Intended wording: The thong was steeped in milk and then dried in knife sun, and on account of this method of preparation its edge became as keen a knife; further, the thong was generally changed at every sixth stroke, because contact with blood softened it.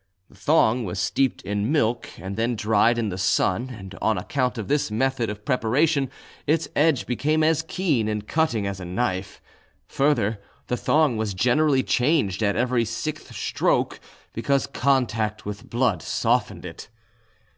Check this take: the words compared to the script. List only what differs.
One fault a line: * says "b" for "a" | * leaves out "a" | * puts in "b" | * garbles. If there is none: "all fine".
* says "the" for "knife"
* puts in "and cutting as"